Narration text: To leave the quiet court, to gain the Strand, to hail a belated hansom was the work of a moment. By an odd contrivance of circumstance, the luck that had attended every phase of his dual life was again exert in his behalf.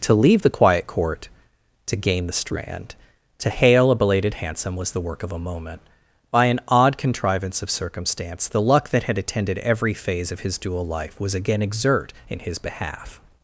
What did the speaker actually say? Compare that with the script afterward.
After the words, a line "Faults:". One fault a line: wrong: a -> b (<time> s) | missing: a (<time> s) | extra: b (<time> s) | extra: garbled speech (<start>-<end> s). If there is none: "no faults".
To leave the quiet court, to gain the Strand, to hail a belated hansom was the work of a moment. By an odd contrivance of circumstance, the luck that had attended every phase of his dual life was again exert in his behalf.
Faults:
no faults